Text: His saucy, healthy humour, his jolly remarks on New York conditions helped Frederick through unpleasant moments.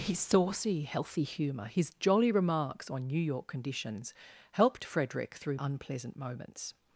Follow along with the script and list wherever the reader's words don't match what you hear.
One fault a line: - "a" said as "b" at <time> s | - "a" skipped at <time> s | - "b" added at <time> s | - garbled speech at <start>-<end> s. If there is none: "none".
none